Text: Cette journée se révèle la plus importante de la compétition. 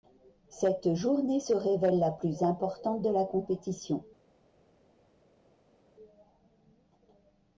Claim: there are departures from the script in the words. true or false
false